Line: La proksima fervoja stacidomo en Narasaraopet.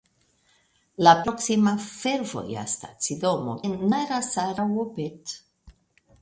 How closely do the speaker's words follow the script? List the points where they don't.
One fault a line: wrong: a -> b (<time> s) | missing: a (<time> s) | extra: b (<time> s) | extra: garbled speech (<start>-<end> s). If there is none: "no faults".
no faults